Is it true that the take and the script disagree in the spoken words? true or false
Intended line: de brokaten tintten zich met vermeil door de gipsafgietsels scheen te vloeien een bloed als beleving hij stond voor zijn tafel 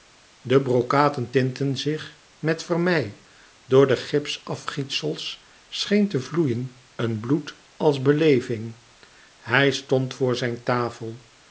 false